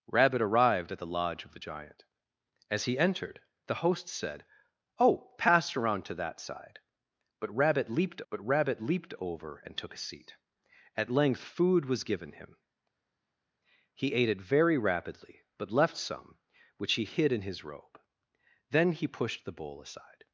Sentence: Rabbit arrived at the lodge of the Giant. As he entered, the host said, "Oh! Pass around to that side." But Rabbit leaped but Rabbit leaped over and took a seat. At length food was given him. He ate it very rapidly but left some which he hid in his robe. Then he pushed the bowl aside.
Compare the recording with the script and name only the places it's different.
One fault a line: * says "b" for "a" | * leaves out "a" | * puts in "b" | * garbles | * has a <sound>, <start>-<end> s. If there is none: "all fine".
all fine